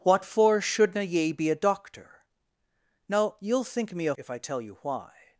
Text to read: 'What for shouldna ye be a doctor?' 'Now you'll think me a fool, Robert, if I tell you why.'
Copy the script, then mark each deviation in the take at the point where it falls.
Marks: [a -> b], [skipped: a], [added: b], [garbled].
'What for shouldna ye be a doctor?' 'Now you'll think me a [skipped: fool, Robert,] if I tell you why.'